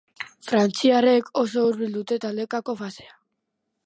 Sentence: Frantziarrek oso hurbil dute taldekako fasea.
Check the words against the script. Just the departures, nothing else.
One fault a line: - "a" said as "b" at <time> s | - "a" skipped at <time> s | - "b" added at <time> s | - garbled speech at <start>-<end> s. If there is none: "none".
none